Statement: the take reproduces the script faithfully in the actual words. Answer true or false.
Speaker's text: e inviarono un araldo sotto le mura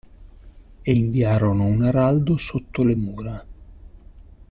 true